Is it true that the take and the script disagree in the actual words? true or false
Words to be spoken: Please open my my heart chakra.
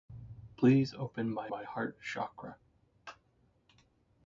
false